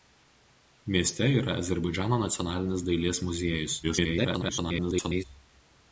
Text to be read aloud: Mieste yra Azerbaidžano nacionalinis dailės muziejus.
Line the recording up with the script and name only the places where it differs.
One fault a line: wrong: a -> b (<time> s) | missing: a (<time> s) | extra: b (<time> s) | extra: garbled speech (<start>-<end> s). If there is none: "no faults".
extra: garbled speech (3.8-5.2 s)